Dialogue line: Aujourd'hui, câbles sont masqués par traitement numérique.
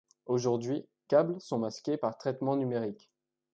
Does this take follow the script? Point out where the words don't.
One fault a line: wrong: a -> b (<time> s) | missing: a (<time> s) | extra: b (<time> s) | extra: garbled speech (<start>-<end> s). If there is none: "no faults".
no faults